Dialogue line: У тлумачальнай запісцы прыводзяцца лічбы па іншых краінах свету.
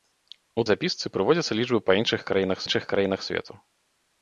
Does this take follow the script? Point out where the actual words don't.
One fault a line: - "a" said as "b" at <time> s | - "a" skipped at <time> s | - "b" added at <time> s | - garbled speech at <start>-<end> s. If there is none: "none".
- "тлумачальнай" skipped at 0.6 s
- "іншых краінах" added at 2.6 s